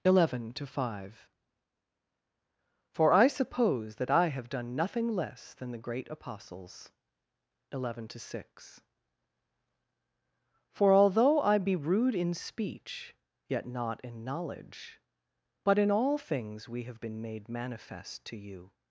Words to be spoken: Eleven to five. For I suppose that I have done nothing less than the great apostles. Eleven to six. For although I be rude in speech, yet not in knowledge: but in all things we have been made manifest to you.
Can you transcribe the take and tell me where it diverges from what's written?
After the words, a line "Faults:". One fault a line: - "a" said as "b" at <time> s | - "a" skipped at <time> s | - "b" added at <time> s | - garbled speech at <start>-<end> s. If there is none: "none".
Eleven to five. For I suppose that I have done nothing less than the great apostles. Eleven to six. For although I be rude in speech, yet not in knowledge: but in all things we have been made manifest to you.
Faults:
none